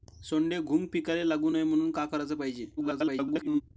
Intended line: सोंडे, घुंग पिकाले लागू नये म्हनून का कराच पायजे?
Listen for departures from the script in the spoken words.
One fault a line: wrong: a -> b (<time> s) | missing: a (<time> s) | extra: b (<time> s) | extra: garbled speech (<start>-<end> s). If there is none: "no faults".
extra: garbled speech (2.8-3.6 s)